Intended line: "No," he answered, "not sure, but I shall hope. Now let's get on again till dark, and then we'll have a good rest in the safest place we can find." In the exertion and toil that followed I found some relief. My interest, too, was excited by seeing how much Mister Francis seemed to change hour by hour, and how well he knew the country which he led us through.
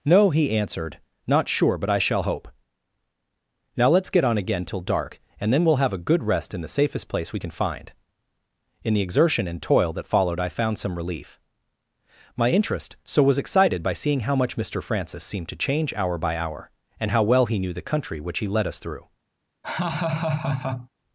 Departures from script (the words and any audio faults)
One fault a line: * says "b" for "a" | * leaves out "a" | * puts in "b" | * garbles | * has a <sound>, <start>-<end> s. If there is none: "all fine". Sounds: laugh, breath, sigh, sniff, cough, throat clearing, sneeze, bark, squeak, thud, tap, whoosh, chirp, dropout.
* says "so" for "too"
* has a laugh, 19.6-20.9 s